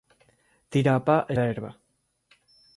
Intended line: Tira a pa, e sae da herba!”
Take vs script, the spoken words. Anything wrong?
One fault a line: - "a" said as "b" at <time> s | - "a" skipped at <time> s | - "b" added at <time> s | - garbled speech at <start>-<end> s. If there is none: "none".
- "sae" skipped at 1.4 s